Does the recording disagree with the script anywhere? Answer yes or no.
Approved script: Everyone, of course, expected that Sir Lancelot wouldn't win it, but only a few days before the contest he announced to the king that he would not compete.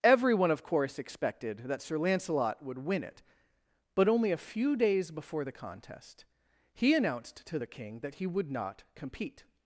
yes